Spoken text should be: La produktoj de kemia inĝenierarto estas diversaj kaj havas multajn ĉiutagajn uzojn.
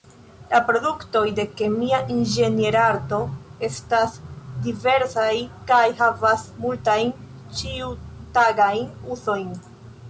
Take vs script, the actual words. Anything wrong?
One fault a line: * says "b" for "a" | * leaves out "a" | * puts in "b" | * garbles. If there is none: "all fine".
all fine